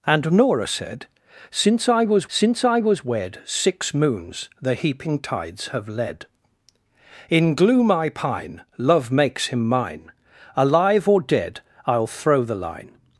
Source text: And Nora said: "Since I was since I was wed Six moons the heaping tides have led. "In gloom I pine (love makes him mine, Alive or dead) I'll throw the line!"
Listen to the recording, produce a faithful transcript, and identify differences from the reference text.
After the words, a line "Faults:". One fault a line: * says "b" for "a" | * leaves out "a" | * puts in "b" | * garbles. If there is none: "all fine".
And Nora said: "Since I was since I was wed Six moons the heaping tides have led. "In gloom I pine (love makes him mine, Alive or dead) I'll throw the line!"
Faults:
all fine